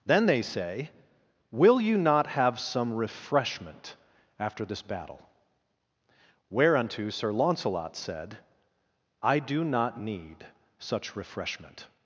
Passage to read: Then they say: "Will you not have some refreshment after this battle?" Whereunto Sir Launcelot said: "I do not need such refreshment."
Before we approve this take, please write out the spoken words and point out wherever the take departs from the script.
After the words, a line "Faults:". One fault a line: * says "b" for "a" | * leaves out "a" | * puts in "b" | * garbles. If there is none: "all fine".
Then they say: "Will you not have some refreshment after this battle?" Whereunto Sir Launcelot said: "I do not need such refreshment."
Faults:
all fine